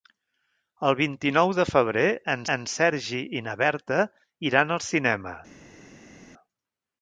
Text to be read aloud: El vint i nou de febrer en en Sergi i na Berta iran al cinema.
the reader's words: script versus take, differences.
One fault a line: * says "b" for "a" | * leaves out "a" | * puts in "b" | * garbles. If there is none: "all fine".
all fine